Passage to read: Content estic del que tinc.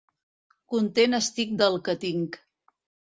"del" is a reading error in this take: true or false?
false